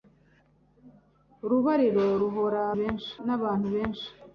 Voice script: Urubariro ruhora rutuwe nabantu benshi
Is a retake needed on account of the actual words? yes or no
yes